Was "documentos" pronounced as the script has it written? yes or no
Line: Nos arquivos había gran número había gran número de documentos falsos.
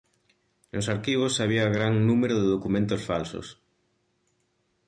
yes